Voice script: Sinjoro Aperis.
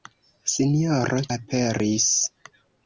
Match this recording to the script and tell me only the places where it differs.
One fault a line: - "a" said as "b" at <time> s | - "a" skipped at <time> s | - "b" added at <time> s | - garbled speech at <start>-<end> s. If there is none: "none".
none